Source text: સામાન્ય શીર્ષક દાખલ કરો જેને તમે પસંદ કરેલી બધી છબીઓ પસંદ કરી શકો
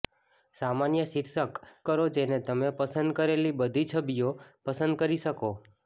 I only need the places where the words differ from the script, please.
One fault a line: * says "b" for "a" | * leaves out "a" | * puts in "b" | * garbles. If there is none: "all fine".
* leaves out "દાખલ"